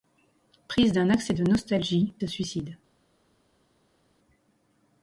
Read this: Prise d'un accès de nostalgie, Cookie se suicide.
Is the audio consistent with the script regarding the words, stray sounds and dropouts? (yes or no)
no